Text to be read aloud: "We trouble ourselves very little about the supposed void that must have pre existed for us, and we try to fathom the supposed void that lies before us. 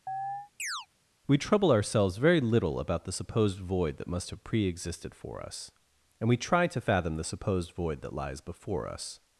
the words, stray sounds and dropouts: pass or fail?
fail